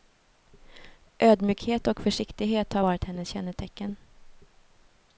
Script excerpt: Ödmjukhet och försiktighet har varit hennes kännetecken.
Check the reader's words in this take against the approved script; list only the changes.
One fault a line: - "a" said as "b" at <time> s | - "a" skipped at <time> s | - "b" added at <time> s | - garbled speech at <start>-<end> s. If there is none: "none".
none